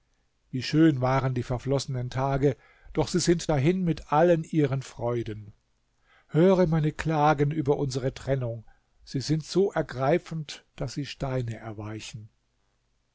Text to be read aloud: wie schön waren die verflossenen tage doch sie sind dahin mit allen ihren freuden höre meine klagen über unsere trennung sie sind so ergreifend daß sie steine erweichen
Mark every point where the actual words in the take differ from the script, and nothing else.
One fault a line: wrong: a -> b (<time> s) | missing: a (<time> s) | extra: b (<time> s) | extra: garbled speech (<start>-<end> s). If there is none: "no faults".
no faults